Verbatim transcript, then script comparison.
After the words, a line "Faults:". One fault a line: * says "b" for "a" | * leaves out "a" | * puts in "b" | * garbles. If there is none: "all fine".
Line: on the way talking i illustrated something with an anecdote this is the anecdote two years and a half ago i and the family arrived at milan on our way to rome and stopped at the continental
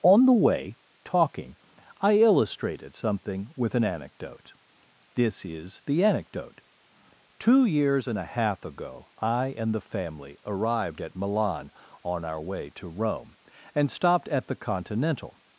on the way talking i illustrated something with an anecdote this is the anecdote two years and a half ago i and the family arrived at milan on our way to rome and stopped at the continental
Faults:
all fine